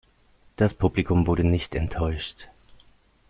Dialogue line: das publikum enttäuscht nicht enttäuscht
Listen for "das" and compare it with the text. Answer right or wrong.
right